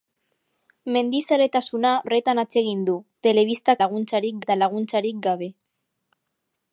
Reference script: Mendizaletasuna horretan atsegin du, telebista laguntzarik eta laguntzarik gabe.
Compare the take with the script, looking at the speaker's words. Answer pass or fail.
pass